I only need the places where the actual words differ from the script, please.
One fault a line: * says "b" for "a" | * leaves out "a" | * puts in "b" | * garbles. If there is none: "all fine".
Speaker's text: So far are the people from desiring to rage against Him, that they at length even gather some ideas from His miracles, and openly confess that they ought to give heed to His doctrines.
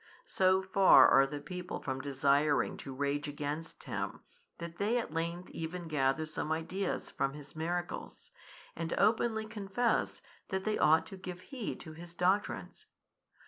all fine